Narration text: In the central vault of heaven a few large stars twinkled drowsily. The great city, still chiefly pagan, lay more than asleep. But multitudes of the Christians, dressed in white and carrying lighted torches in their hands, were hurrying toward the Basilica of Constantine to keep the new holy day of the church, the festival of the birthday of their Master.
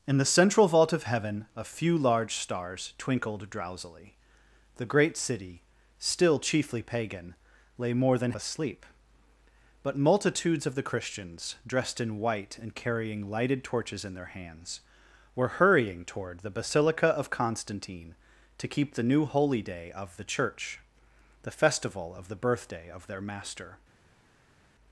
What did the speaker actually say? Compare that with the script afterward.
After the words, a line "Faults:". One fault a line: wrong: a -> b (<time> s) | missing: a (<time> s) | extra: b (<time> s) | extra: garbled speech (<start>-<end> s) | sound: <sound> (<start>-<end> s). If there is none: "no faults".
In the central vault of heaven a few large stars twinkled drowsily. The great city, still chiefly pagan, lay more than asleep. But multitudes of the Christians, dressed in white and carrying lighted torches in their hands, were hurrying toward the Basilica of Constantine to keep the new holy day of the church, the festival of the birthday of their Master.
Faults:
no faults